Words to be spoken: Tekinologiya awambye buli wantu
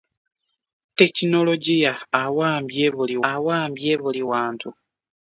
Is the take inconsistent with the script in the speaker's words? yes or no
yes